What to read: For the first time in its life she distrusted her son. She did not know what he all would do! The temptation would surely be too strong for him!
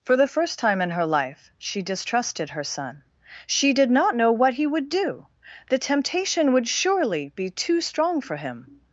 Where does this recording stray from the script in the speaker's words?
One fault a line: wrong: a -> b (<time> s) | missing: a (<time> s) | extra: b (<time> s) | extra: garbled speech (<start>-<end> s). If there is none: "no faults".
wrong: its -> her (0.9 s)
missing: all (4.6 s)